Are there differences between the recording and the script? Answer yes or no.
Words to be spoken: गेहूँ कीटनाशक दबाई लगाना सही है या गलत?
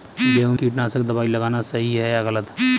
no